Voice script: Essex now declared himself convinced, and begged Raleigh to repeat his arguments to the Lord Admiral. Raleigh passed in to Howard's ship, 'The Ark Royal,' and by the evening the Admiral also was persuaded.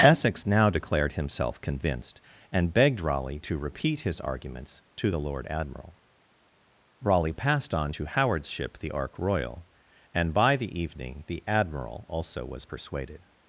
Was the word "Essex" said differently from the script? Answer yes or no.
no